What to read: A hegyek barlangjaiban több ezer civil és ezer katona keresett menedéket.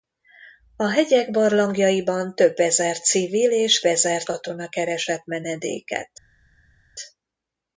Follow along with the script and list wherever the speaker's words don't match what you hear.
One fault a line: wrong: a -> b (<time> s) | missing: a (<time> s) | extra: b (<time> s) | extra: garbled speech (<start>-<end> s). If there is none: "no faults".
no faults